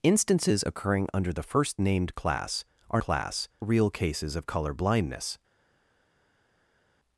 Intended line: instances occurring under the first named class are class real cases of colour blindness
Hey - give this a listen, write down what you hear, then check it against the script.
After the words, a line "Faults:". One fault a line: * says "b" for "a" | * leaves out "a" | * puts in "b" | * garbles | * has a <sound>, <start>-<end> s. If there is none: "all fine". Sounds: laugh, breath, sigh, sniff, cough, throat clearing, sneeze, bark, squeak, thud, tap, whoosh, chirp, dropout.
instances occurring under the first named class are class real cases of colour blindness
Faults:
all fine